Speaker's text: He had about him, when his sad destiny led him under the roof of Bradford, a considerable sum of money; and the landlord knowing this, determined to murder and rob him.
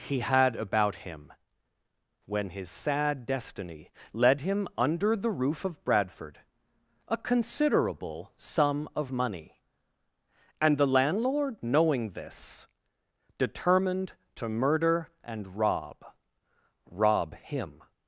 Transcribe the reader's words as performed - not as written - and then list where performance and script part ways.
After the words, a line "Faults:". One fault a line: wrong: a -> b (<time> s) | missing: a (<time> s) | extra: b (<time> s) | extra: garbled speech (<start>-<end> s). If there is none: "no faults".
He had about him, when his sad destiny led him under the roof of Bradford, a considerable sum of money; and the landlord knowing this, determined to murder and rob rob him.
Faults:
extra: rob (16.9 s)